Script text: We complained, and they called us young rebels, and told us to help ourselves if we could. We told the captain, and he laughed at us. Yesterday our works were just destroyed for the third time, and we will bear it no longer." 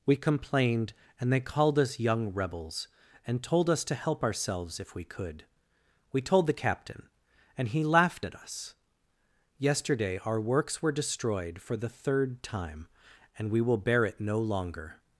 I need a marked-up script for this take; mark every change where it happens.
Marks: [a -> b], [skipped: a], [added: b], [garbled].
We complained, and they called us young rebels, and told us to help ourselves if we could. We told the captain, and he laughed at us. Yesterday our works were [skipped: just] destroyed for the third time, and we will bear it no longer."